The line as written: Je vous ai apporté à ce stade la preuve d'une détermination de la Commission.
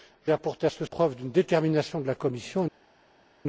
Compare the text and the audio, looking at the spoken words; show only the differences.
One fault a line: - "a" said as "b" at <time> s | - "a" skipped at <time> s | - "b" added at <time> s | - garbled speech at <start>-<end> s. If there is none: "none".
- "vous" skipped at 0.3 s
- "stade la" skipped at 0.8 s